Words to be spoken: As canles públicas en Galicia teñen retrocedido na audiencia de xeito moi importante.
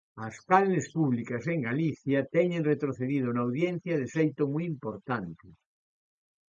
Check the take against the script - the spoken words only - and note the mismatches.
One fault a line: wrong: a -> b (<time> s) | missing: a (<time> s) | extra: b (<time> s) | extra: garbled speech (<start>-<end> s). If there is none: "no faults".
no faults